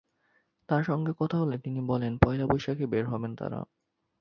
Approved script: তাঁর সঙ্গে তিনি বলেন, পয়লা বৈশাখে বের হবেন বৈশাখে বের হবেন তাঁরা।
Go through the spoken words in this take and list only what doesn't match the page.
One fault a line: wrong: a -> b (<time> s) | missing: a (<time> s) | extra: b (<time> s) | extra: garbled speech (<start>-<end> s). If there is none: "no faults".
extra: কথা হলে (1.2 s)
missing: বৈশাখে বের হবেন (3.3 s)